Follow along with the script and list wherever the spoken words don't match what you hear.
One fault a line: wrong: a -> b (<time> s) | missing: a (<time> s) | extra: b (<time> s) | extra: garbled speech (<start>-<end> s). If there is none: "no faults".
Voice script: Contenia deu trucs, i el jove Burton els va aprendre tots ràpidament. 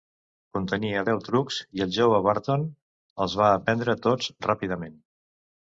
no faults